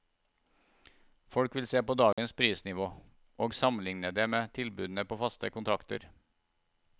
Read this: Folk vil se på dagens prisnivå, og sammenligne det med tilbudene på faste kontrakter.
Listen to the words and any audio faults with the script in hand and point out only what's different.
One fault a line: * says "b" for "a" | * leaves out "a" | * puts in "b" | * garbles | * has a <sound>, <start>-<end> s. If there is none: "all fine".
* has a dropout, 2.1-2.2 s